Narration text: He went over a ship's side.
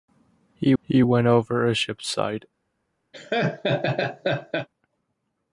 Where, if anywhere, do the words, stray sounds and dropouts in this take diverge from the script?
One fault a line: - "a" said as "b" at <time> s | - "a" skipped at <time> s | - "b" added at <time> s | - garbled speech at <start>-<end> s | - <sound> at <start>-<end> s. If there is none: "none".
- "he" added at 0.8 s
- laugh at 3.1-4.7 s